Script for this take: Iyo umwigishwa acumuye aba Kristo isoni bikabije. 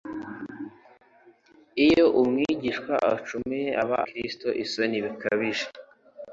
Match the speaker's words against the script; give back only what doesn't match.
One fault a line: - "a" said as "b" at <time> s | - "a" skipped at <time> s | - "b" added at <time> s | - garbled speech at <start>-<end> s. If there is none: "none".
none